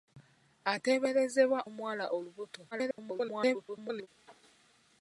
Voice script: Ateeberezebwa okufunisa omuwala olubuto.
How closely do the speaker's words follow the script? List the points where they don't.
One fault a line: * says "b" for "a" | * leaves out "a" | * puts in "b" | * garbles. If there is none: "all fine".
* leaves out "okufunisa"
* garbles